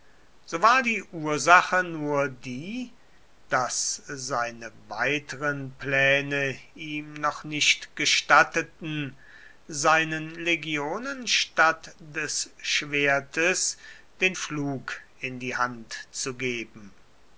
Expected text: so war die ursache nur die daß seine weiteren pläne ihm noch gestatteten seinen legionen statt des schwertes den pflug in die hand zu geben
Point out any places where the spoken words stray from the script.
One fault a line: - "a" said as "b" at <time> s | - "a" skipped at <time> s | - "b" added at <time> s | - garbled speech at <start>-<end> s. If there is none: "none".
- "nicht" added at 7.4 s